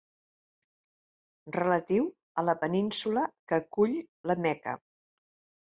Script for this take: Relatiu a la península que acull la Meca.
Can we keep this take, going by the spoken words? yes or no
yes